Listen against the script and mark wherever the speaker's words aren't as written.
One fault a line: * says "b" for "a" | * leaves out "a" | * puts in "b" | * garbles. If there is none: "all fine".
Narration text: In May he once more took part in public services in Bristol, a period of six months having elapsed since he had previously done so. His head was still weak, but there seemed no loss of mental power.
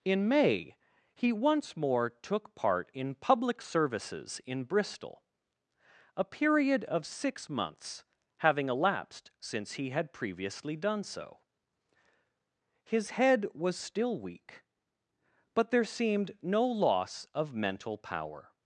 all fine